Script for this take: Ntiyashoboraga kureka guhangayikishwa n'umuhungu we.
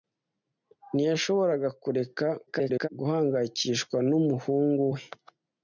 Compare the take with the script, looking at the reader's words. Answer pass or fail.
fail